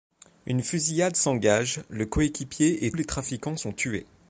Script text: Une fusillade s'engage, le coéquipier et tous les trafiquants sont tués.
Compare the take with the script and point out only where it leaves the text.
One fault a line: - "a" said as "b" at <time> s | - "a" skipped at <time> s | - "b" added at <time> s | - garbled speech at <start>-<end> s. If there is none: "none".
- "tous" skipped at 2.9 s